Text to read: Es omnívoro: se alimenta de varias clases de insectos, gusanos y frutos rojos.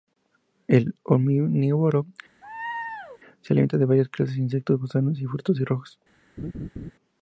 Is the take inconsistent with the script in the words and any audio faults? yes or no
yes